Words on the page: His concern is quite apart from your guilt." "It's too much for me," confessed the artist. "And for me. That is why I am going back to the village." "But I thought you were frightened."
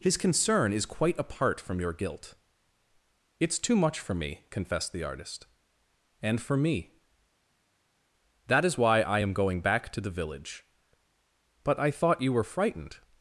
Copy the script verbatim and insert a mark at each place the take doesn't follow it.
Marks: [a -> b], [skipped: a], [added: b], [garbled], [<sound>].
His concern is quite apart from your guilt." "It's too much for me," confessed the artist. "And for me. That is why I am going back to the village." "But I thought you were frightened."